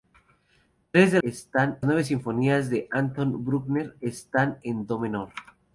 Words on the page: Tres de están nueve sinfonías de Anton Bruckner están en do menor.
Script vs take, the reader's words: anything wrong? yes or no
no